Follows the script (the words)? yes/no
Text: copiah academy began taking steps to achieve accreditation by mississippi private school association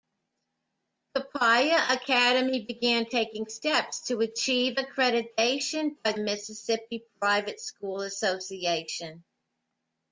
yes